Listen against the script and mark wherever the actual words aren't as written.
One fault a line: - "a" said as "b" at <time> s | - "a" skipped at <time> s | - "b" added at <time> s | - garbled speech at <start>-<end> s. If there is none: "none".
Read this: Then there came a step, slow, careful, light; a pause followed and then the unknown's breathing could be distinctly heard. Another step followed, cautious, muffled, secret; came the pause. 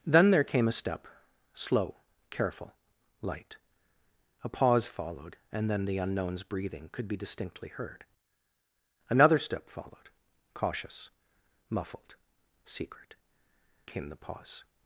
none